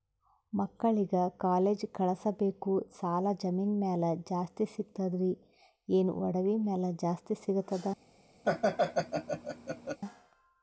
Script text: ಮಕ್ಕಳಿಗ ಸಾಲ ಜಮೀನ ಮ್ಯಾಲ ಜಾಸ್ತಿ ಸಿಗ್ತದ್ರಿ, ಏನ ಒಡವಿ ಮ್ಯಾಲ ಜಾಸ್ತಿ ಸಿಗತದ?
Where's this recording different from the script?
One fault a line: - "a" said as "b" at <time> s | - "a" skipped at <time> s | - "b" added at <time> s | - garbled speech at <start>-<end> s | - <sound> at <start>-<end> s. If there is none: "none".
- "ಕಾಲೇಜ್ ಕಳಸಬೇಕು" added at 1.4 s
- laugh at 8.4-10.0 s